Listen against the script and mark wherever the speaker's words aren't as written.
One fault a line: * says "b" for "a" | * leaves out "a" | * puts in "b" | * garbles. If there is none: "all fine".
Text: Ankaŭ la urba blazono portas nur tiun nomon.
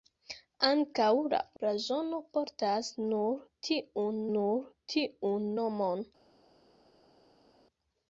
* leaves out "urba"
* puts in "nur tiun"